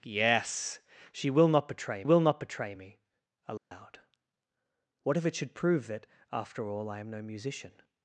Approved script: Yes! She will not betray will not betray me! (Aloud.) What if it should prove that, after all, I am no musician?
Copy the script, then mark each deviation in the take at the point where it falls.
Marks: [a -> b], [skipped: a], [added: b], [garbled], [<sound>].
Yes! She will not betray will not betray me! (Aloud.) [dropout] What if it should prove that, after all, I am no musician?